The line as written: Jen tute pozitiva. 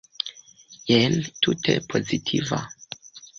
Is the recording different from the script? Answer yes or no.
no